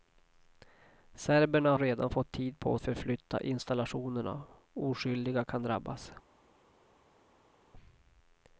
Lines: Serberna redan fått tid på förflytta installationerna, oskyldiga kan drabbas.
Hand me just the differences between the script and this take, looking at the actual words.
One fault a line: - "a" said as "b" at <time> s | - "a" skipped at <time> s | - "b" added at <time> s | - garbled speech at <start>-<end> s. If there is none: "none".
none